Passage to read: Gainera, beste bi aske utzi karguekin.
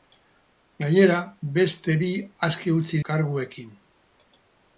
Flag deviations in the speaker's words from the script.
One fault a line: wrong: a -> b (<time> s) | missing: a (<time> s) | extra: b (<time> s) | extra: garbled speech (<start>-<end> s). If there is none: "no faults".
no faults